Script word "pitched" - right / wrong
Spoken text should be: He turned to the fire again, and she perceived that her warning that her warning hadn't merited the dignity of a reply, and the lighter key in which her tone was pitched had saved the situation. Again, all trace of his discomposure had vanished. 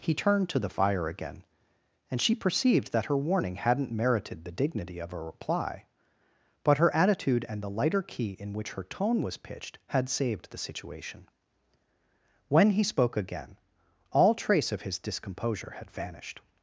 right